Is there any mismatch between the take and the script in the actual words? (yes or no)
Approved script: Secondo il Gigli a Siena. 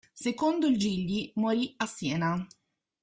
yes